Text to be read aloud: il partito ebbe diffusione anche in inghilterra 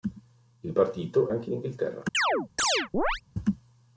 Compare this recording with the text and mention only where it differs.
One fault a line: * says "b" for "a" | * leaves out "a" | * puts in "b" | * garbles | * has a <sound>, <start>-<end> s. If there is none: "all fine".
* leaves out "ebbe diffusione"
* has a chirp, 2.1-3.2 s